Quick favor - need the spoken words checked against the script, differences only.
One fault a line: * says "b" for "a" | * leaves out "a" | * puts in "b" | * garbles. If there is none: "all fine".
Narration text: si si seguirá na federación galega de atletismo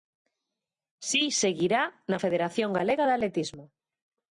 * leaves out "si"